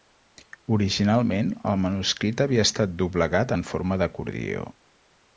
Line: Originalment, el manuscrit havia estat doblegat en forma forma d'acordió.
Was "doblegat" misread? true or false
false